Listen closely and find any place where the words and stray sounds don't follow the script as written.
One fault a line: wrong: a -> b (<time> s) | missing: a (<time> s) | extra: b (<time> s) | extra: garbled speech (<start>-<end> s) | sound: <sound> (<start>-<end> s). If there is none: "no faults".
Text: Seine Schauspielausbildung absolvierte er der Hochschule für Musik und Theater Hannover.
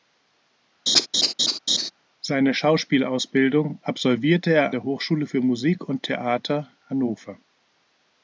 sound: laugh (0.9-1.9 s)